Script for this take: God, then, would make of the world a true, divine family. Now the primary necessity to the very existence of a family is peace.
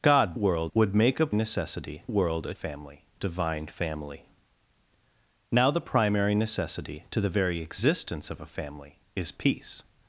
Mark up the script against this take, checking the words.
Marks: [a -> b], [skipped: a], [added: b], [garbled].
God, [then, -> world] would make of [the -> necessity] world a [true, -> family] divine family. Now the primary necessity to the very existence of a family is peace.